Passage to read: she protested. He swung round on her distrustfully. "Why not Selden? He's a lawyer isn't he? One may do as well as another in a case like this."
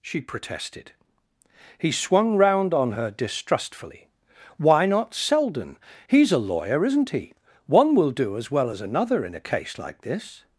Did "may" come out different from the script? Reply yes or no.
yes